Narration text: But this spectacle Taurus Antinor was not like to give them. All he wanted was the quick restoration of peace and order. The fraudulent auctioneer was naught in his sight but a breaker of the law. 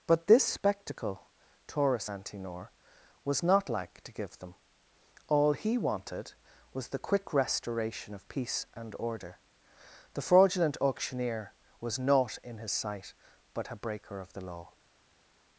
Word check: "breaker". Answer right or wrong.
right